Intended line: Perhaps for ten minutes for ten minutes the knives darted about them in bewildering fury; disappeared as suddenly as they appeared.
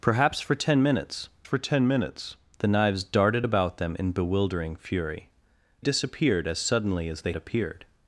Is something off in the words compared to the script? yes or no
no